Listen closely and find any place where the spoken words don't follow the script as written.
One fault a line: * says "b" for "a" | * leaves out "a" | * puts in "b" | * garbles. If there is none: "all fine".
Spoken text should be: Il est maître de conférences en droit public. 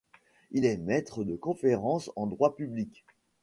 all fine